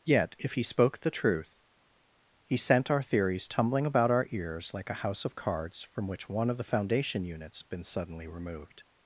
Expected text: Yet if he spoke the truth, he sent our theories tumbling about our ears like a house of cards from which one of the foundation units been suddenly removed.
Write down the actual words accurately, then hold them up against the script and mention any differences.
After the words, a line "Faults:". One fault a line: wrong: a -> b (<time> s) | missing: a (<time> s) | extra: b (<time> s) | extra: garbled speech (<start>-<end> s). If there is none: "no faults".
Yet if he spoke the truth, he sent our theories tumbling about our ears like a house of cards from which one of the foundation units been suddenly removed.
Faults:
no faults